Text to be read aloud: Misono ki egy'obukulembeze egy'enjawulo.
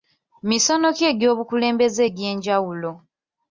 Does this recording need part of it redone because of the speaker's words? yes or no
no